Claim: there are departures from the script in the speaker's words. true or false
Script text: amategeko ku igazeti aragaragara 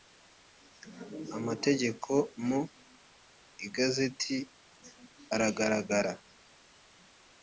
true